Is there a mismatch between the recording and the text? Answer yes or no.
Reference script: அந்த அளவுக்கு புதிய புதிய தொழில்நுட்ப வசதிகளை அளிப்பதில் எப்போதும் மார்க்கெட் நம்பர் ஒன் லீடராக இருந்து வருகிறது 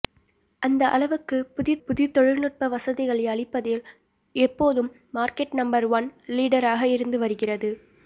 no